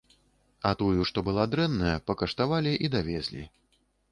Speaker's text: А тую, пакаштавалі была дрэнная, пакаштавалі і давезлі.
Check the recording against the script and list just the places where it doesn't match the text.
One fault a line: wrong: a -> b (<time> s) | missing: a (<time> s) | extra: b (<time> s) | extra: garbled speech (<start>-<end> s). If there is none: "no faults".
wrong: пакаштавалі -> што (1.1 s)